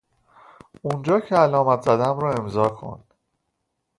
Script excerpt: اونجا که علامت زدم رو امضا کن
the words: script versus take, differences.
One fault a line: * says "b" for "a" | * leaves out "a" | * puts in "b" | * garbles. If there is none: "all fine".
all fine